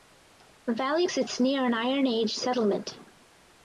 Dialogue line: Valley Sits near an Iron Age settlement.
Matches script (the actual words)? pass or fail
pass